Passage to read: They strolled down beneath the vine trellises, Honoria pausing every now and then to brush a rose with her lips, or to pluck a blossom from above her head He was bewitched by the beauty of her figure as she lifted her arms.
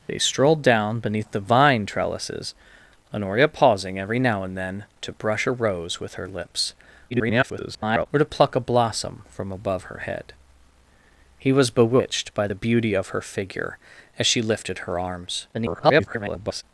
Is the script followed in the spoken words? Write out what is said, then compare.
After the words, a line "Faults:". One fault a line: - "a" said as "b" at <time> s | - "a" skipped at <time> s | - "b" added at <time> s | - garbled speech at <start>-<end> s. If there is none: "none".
They strolled down beneath the vine trellises, Honoria pausing every now and then to brush a rose with her lips, [garbled] or to pluck a blossom from above her head He was bewitched by the beauty of her figure as she lifted her arms. [garbled]
Faults:
- garbled speech at 7.1-8.1 s
- garbled speech at 15.5-16.6 s